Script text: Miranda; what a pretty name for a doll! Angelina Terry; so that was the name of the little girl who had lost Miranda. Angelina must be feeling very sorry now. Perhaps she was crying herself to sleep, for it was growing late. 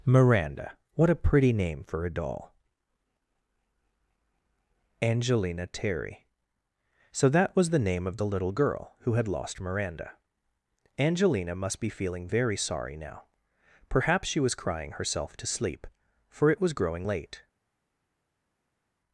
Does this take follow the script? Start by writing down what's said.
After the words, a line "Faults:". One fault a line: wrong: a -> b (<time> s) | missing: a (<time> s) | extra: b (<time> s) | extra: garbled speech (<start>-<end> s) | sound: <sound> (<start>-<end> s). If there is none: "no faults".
Miranda; what a pretty name for a doll! Angelina Terry; so that was the name of the little girl who had lost Miranda. Angelina must be feeling very sorry now. Perhaps she was crying herself to sleep, for it was growing late.
Faults:
no faults